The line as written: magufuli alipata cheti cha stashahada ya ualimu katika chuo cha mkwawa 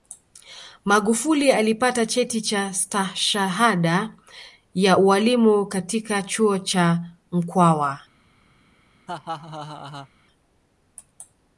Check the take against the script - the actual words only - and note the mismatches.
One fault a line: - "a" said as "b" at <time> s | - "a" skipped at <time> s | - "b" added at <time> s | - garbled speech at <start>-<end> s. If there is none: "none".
none